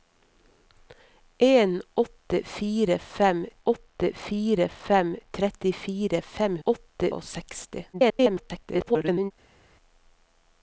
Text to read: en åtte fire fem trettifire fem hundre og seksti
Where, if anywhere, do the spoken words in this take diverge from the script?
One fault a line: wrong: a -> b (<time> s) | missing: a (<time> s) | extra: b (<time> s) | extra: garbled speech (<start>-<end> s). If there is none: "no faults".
extra: åtte fire fem (3.6 s)
wrong: hundre -> åtte (6.6 s)
extra: garbled speech (7.9-9.3 s)